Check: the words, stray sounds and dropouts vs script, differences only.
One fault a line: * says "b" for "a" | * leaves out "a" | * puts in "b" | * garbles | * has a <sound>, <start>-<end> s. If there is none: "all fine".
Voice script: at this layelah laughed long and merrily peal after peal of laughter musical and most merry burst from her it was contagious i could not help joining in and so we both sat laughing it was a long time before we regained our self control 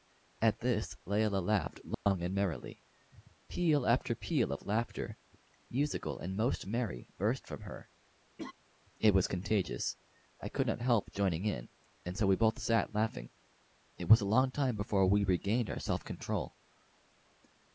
* has a dropout, 1.9-2.1 s
* has a laugh, 8.4-8.5 s